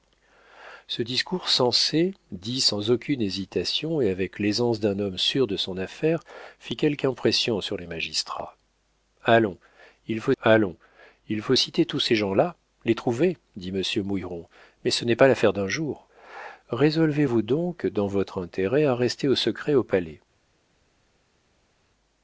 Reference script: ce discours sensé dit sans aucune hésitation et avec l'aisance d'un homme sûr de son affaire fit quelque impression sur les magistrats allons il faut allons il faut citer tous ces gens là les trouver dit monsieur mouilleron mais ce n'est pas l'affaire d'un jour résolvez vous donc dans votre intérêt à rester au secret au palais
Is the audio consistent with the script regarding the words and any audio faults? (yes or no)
yes